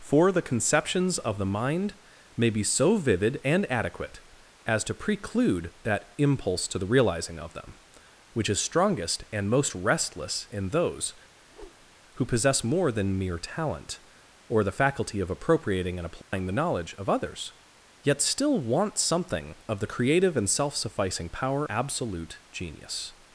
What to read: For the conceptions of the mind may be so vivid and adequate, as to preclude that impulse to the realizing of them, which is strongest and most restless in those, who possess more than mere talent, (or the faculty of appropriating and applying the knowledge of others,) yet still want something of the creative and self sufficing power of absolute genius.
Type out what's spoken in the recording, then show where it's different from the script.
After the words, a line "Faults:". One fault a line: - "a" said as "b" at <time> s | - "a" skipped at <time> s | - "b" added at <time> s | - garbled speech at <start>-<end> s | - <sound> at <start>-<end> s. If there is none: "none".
For the conceptions of the mind may be so vivid and adequate, as to preclude that impulse to the realizing of them, which is strongest and most restless in those, who possess more than mere talent, (or the faculty of appropriating and applying the knowledge of others,) yet still want something of the creative and self sufficing power absolute genius.
Faults:
- whoosh at 11.4-12.0 s
- dropout at 16.2-16.3 s
- "of" skipped at 21.6 s